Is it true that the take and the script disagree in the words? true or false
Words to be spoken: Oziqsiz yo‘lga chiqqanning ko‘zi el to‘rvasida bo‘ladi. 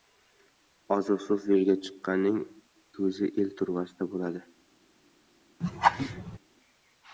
false